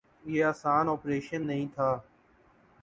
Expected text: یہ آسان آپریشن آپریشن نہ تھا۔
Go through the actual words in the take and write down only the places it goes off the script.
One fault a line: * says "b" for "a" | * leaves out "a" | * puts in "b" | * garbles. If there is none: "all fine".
* leaves out "آپریشن"